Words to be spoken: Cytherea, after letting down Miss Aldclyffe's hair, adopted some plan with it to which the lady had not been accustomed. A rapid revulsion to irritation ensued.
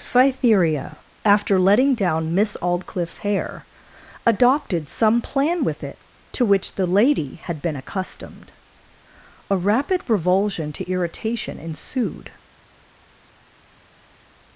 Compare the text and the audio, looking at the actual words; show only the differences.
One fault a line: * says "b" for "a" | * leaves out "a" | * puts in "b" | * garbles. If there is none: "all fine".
* leaves out "not"